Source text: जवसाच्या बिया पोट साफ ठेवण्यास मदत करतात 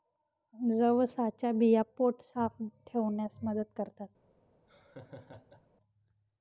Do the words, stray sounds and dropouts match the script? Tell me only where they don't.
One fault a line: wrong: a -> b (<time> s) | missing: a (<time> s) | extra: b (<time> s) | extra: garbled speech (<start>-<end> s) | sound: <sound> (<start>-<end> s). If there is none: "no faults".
sound: laugh (4.7-5.7 s)